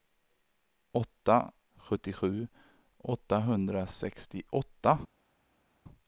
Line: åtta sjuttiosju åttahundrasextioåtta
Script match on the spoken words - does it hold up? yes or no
yes